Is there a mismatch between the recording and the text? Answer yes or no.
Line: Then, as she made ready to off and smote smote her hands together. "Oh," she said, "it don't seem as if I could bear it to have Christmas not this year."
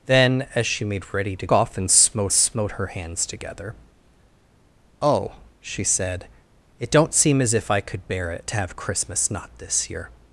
no